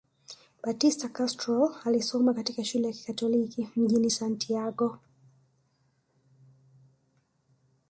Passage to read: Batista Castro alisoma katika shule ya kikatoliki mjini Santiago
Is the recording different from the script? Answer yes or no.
no